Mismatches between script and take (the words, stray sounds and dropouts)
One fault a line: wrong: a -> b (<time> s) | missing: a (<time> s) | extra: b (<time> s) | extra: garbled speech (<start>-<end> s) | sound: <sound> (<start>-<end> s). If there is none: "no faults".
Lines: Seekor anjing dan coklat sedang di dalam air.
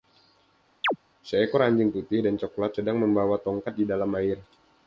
sound: chirp (0.8-1.0 s)
extra: putih (1.9 s)
extra: membawa tongkat (3.0 s)